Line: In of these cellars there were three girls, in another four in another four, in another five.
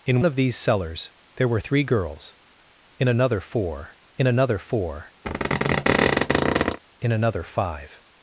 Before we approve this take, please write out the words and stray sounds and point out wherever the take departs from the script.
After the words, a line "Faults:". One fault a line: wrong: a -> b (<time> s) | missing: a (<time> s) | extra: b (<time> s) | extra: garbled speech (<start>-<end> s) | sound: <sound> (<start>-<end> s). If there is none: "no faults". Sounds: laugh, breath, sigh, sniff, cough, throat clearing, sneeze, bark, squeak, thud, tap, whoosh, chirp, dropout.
In of these cellars there were three girls, in another four in another four, in another five.
Faults:
sound: squeak (5.2-6.8 s)